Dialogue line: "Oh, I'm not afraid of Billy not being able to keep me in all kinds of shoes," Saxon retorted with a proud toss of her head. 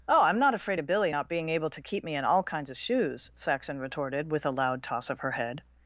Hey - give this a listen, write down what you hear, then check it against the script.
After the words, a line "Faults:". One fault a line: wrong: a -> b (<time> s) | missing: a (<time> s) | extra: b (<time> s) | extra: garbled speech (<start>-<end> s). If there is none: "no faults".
"Oh, I'm not afraid of Billy not being able to keep me in all kinds of shoes," Saxon retorted with a loud toss of her head.
Faults:
wrong: proud -> loud (4.5 s)